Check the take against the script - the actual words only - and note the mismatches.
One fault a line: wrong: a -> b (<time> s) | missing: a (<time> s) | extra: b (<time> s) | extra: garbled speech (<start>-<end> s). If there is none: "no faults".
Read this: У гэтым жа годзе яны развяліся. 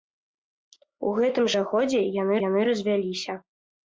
extra: яны (2.5 s)